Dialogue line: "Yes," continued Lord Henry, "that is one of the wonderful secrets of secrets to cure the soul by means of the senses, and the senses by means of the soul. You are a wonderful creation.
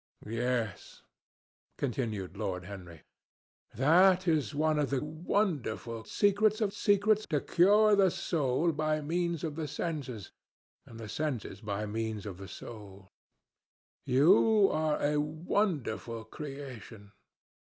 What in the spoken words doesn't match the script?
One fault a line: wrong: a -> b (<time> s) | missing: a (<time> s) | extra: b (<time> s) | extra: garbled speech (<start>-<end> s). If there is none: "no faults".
no faults